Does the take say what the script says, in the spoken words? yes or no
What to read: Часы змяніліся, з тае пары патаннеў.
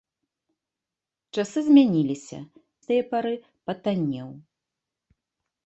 yes